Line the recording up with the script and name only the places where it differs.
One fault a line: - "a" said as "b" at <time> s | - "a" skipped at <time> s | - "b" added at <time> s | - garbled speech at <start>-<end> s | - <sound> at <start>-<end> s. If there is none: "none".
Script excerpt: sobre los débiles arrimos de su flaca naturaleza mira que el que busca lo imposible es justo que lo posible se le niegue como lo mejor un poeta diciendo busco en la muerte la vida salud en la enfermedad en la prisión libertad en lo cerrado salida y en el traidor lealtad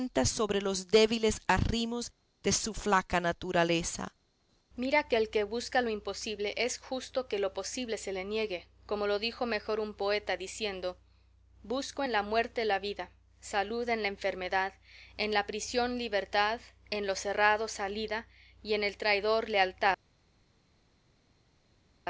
- "dijo" added at 9.2 s